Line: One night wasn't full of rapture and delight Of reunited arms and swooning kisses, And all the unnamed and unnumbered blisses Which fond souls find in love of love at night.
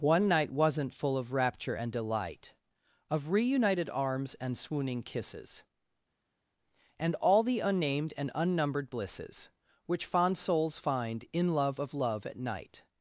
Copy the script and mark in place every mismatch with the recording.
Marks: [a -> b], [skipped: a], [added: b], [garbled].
One night wasn't full of rapture and delight Of reunited arms and swooning kisses, And all the unnamed and unnumbered blisses Which fond souls find in love of love at night.